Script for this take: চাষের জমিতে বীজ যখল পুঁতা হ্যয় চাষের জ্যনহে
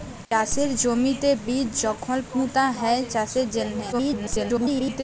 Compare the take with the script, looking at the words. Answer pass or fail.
fail